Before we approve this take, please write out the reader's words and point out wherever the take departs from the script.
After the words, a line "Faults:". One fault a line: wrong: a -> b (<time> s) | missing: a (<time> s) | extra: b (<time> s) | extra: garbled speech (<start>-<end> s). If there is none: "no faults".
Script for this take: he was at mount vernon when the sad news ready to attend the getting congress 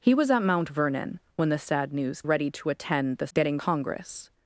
he was at mount vernon when the sad news ready to attend the getting congress
Faults:
no faults